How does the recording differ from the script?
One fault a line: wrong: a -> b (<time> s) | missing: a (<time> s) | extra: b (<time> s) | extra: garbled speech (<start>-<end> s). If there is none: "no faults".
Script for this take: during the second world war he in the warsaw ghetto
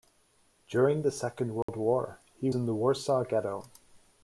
no faults